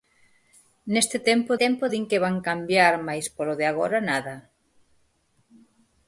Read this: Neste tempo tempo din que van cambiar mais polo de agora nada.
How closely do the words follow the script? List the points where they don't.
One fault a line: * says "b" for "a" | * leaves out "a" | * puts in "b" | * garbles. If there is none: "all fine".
all fine